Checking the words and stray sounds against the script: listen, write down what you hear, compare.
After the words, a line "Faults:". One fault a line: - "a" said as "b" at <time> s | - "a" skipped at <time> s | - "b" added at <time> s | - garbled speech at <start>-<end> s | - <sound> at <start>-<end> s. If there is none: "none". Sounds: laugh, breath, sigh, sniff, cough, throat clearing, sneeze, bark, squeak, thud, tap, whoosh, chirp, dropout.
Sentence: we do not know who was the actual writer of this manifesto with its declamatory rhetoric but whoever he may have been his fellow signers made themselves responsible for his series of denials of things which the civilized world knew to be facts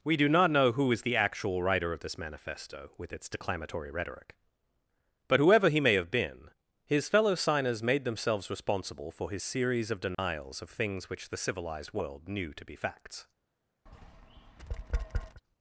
we do not know who is the actual writer of this manifesto with its declamatory rhetoric but whoever he may have been his fellow signers made themselves responsible for his series of denials of things which the civilized world knew to be facts
Faults:
- "was" said as "is" at 0.9 s
- dropout at 10.1-10.2 s
- tap at 13.9-15.4 s